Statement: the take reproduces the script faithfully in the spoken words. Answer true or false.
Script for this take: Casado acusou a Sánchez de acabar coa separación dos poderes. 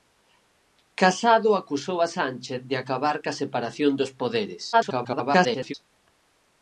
false